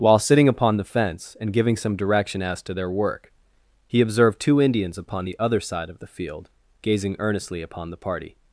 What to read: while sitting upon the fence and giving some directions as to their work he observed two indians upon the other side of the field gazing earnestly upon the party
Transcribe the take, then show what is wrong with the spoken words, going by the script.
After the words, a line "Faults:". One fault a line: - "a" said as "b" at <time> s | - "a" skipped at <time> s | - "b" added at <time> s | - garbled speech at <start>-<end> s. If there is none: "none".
while sitting upon the fence and giving some direction as to their work he observed two indians upon the other side of the field gazing earnestly upon the party
Faults:
- "directions" said as "direction" at 1.9 s